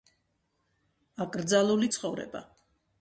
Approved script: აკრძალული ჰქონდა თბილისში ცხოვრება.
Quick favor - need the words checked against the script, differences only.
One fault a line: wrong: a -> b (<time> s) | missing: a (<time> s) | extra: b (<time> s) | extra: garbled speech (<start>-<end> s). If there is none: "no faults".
missing: ჰქონდა თბილისში (1.9 s)